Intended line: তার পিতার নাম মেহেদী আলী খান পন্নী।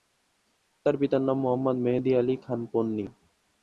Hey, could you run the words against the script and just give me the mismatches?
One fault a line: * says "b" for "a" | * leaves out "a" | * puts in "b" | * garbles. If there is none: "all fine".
* puts in "মোহাম্মদ"